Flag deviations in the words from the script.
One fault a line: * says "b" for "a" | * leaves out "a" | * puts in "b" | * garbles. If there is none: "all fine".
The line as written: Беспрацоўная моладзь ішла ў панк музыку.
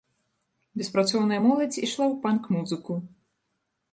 all fine